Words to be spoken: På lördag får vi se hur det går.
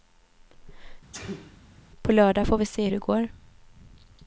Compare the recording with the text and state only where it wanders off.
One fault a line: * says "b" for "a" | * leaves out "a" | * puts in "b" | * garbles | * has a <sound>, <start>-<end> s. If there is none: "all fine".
* has a sneeze, 1.1-1.6 s
* leaves out "hur"